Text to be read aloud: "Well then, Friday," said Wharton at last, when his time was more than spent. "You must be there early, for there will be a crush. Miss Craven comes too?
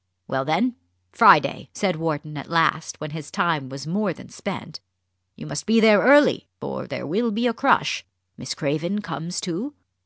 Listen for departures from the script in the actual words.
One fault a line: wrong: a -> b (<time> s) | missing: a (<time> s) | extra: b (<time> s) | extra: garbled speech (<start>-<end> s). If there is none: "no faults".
no faults